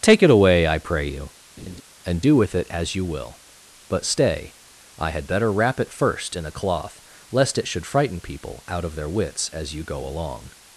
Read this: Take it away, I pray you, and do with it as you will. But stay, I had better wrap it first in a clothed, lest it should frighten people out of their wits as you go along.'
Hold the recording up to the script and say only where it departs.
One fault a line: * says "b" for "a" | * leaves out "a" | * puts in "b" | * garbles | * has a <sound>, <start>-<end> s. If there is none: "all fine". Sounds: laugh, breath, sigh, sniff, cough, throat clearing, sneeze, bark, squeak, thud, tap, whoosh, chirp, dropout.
* has a laugh, 1.6-1.8 s
* says "cloth" for "clothed"